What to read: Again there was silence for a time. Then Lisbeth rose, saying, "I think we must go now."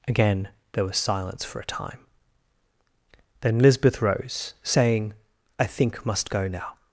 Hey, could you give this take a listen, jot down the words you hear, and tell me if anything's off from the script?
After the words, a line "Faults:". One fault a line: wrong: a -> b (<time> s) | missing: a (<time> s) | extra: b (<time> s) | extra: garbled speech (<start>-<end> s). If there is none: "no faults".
Again there was silence for a time. Then Lisbeth rose, saying, "I think must go now."
Faults:
missing: we (6.0 s)